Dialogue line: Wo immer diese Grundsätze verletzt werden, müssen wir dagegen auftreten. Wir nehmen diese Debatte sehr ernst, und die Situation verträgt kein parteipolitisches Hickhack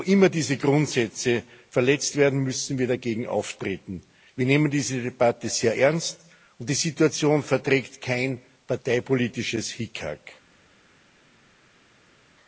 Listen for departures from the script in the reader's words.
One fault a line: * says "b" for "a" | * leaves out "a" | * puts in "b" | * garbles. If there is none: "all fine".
all fine